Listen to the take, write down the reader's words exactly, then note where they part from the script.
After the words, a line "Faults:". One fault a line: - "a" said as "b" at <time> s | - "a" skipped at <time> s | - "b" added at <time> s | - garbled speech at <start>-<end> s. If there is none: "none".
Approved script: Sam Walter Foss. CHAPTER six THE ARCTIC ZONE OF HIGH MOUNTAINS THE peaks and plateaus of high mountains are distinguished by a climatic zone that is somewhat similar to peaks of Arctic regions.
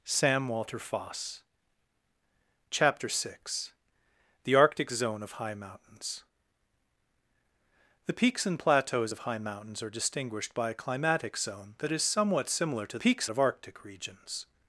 Sam Walter Foss. CHAPTER six THE ARCTIC ZONE OF HIGH MOUNTAINS THE peaks and plateaus of high mountains are distinguished by a climatic zone that is somewhat similar to peaks of Arctic regions.
Faults:
none